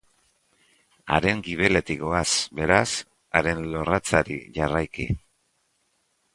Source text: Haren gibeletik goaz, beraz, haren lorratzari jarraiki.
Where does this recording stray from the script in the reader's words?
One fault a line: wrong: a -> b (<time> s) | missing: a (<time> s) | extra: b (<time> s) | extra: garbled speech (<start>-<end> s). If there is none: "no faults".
no faults